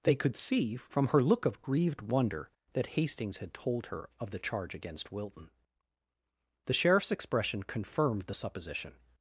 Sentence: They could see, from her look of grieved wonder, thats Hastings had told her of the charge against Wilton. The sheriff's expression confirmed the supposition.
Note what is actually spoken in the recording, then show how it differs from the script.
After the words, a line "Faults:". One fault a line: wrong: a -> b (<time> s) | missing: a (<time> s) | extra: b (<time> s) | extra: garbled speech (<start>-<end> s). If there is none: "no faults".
They could see, from her look of grieved wonder, that Hastings had told her of the charge against Wilton. The sheriff's expression confirmed the supposition.
Faults:
wrong: thats -> that (2.7 s)